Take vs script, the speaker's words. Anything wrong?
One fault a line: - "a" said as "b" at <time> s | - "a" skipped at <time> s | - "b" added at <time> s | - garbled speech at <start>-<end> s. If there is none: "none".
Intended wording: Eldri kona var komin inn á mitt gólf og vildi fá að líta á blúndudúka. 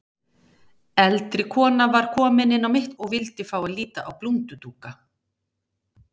- "gólf" skipped at 3.0 s